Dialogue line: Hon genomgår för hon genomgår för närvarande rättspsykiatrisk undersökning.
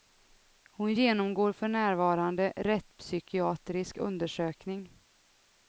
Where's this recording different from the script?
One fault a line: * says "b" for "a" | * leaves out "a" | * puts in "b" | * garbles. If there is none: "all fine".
* leaves out "hon genomgår för"